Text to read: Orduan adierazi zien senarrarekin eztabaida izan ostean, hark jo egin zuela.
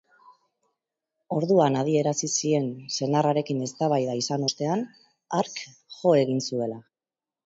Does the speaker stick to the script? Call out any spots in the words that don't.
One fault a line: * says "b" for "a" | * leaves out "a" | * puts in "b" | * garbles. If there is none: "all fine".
all fine